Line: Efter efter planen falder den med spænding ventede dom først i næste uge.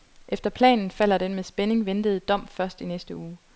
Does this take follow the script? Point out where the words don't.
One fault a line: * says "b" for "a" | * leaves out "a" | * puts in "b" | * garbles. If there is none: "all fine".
* leaves out "efter"